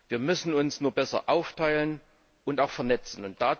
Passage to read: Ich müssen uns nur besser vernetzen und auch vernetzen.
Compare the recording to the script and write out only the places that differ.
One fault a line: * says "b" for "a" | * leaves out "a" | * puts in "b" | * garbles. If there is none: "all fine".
* says "Wir" for "Ich"
* says "aufteilen" for "vernetzen"